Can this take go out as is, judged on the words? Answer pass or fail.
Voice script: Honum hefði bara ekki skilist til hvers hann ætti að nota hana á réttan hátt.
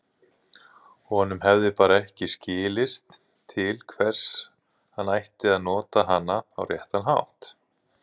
pass